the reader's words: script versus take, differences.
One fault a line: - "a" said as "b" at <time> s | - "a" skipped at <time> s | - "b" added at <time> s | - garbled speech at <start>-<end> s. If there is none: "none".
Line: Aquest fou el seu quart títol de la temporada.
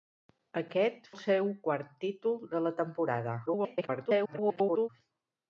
- "fou" skipped at 1.1 s
- garbled speech at 3.5-4.9 s